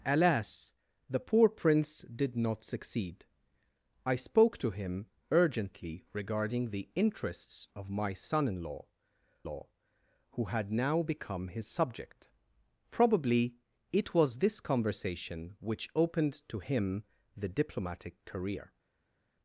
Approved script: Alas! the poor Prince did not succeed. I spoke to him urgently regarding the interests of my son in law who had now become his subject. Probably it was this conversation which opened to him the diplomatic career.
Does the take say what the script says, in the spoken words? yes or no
no